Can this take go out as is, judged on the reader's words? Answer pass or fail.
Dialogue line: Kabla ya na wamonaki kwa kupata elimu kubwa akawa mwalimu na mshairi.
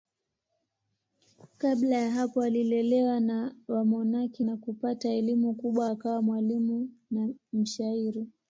fail